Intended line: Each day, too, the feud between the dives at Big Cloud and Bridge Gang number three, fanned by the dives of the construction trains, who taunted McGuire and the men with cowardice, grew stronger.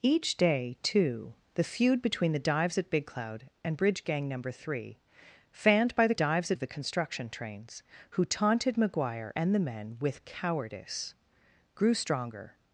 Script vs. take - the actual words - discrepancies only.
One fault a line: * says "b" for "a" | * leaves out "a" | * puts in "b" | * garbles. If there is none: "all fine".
all fine